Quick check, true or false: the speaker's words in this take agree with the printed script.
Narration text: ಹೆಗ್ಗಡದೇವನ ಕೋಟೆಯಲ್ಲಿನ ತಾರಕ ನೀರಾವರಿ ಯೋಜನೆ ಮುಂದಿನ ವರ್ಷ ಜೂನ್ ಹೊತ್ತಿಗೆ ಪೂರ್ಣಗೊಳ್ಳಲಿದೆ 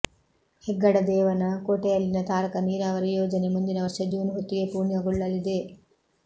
true